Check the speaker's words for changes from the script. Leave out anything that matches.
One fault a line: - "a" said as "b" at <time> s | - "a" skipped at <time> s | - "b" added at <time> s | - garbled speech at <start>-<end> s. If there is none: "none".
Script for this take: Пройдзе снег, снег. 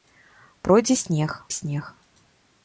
none